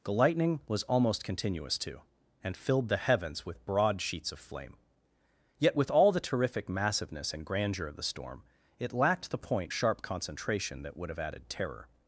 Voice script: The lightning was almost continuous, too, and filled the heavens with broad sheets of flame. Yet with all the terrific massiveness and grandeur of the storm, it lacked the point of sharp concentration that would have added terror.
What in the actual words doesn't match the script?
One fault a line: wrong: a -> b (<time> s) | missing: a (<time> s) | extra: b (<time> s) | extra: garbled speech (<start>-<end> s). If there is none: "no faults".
missing: of (9.7 s)